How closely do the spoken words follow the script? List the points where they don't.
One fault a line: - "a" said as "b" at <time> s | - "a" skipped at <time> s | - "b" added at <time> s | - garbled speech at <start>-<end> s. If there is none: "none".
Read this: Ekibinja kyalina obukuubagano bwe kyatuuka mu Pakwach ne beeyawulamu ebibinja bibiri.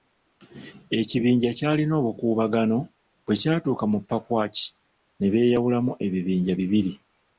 none